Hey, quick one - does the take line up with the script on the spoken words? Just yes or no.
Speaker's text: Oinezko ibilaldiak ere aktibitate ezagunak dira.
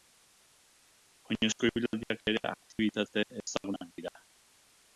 yes